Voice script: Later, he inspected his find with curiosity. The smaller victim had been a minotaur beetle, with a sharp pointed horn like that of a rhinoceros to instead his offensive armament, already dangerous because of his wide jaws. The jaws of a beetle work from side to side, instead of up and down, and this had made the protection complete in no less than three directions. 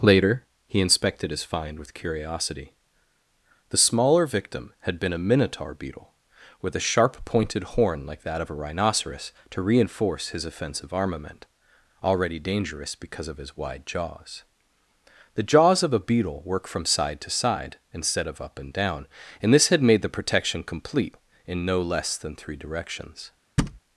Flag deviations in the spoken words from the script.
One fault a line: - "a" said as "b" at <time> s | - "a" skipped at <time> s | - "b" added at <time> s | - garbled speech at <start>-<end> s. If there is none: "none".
- "instead" said as "reinforce" at 9.6 s